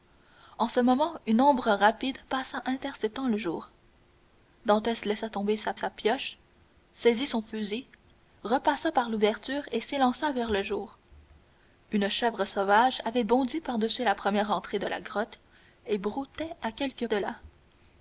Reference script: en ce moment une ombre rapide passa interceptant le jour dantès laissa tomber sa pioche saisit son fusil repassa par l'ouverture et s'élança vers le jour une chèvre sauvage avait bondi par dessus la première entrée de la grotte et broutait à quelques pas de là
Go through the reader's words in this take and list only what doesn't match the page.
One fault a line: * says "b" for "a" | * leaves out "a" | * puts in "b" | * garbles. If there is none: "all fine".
* puts in "sa"
* leaves out "pas"